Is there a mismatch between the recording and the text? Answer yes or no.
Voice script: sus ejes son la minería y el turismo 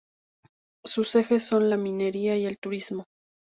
no